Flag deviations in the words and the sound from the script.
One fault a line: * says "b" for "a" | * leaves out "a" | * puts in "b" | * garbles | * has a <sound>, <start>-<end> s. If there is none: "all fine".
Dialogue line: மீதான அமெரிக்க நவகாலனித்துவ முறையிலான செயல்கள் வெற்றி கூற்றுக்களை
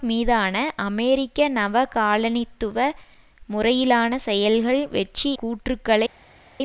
all fine